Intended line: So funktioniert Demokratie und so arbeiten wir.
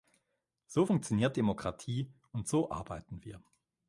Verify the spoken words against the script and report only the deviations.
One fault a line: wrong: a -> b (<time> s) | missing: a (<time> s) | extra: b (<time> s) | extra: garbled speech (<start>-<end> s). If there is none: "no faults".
no faults